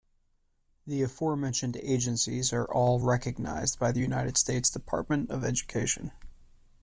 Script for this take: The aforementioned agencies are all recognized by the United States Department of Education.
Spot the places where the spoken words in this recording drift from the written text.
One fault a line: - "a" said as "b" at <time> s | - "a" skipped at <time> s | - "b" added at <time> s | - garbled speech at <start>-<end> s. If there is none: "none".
none